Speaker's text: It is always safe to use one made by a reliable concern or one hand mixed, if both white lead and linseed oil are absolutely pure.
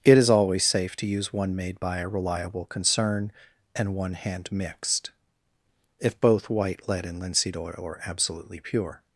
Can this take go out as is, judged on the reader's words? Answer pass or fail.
fail